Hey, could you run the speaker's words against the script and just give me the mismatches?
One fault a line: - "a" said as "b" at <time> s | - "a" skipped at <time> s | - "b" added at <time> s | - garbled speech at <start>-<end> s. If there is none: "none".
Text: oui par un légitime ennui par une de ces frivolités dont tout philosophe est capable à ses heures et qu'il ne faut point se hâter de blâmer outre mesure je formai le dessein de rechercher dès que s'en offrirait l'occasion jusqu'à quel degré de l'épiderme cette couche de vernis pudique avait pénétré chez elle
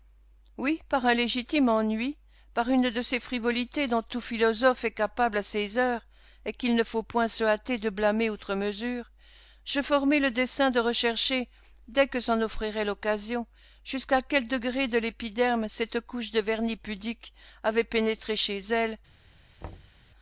none